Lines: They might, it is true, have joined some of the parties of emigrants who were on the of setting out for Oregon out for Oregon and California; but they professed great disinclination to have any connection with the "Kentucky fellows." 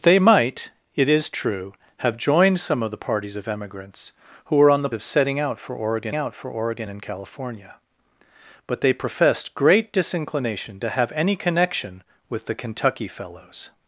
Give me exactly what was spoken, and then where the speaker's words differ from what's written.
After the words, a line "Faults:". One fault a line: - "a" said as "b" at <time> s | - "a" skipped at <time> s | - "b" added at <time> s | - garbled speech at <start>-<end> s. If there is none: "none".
They might, it is true, have joined some of the parties of emigrants who were on the of setting out for Oregon out for Oregon and California; but they professed great disinclination to have any connection with the "Kentucky fellows."
Faults:
none